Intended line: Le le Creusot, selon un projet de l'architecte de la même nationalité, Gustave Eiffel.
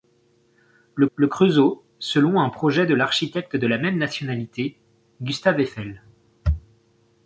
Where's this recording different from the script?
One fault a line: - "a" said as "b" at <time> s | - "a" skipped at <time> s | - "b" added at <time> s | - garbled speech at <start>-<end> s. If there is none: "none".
none